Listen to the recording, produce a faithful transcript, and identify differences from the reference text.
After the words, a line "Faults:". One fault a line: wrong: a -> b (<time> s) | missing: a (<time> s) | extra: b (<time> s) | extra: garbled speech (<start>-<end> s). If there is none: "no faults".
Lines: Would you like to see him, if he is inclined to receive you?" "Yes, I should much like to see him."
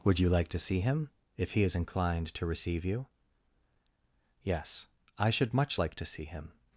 Would you like to see him, if he is inclined to receive you?" "Yes, I should much like to see him."
Faults:
no faults